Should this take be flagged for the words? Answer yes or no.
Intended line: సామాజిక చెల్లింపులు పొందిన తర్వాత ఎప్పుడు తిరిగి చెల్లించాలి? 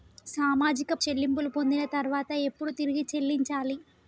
no